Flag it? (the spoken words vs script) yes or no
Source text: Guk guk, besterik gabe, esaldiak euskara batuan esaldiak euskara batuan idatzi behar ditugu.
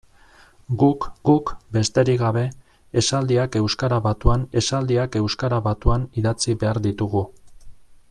no